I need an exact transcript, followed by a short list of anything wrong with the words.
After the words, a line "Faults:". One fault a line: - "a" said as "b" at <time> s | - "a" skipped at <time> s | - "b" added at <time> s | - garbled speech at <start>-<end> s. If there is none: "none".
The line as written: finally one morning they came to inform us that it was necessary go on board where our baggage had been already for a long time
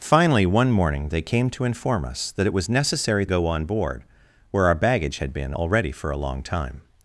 finally one morning they came to inform us that it was necessary go on board where our baggage had been already for a long time
Faults:
none